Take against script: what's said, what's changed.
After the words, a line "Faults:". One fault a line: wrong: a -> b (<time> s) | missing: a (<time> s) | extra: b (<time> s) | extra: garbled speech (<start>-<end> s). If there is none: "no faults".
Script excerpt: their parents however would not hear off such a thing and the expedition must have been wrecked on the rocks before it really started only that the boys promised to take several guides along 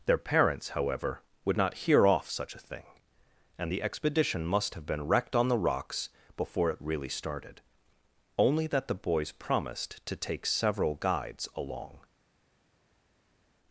their parents however would not hear off such a thing and the expedition must have been wrecked on the rocks before it really started only that the boys promised to take several guides along
Faults:
no faults